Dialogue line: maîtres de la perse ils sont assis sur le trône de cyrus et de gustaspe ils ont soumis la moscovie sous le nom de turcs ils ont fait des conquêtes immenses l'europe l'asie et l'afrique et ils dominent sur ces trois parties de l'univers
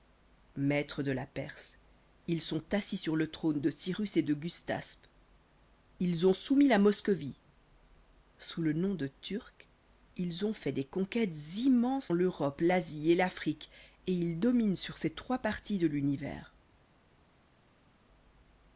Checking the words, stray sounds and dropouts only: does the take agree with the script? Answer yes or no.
yes